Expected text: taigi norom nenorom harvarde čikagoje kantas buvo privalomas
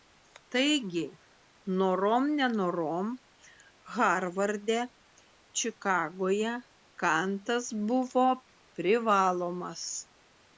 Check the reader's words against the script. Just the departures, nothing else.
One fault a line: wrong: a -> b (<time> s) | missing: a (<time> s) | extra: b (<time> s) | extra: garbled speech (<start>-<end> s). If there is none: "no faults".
no faults